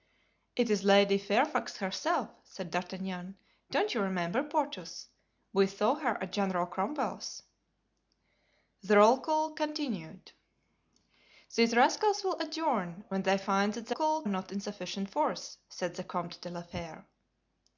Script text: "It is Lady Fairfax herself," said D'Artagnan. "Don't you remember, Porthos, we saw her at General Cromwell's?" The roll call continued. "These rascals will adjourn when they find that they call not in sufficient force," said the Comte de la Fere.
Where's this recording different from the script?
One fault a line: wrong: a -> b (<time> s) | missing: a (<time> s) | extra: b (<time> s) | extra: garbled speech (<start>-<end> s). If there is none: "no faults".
no faults